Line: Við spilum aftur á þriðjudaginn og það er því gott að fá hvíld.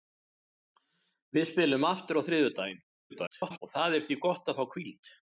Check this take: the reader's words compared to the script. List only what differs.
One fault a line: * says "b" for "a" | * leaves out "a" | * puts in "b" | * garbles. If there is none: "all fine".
* garbles